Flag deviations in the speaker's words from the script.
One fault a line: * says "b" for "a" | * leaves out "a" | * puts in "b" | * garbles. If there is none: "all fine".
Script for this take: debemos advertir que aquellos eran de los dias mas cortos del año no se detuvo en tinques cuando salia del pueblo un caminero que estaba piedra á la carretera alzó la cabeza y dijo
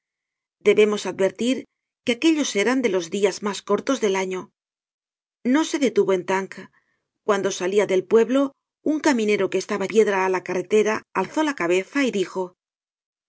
all fine